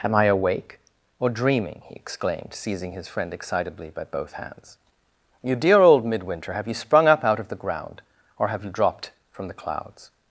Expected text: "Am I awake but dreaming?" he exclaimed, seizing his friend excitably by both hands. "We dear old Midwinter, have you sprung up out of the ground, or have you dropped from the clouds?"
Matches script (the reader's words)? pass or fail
fail